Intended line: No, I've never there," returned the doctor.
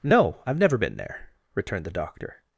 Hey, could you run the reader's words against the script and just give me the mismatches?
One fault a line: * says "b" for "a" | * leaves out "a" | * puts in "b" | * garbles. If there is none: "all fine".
* puts in "been"